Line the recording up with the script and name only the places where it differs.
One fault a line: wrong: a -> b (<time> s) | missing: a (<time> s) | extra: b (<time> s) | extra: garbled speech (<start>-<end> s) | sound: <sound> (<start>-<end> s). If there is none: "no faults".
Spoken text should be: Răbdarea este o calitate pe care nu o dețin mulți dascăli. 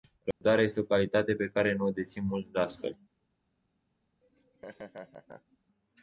sound: dropout (0.3-0.4 s)
sound: laugh (4.2-5.6 s)